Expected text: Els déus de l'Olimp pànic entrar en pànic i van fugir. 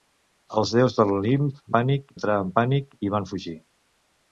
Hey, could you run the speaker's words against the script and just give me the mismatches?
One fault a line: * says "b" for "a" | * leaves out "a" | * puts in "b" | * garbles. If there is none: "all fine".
all fine